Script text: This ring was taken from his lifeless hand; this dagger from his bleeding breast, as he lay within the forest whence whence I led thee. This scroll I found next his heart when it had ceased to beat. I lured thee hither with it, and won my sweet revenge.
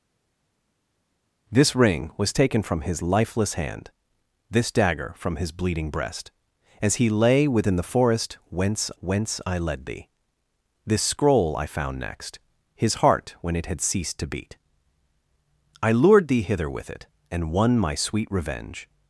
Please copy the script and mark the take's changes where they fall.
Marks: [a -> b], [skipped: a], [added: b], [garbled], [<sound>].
This ring was taken from his lifeless hand; this dagger from his bleeding breast, as he lay within the forest whence whence I led thee. This scroll I found next his heart when it had ceased to beat. I lured thee hither with it, and won my sweet revenge.